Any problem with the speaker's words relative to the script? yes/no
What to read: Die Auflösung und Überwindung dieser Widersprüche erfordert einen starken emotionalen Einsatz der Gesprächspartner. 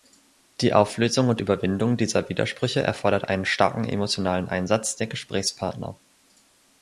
no